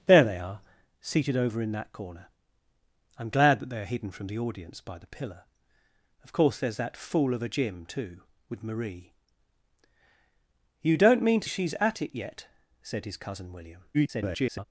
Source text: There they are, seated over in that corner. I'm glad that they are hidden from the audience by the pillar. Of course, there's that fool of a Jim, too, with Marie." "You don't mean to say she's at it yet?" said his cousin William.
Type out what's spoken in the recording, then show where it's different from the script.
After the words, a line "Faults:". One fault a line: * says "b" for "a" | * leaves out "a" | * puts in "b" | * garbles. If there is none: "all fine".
There they are, seated over in that corner. I'm glad that they are hidden from the audience by the pillar. Of course, there's that fool of a Jim, too, with Marie." "You don't mean to she's at it yet?" said his cousin William. [garbled]
Faults:
* leaves out "say"
* garbles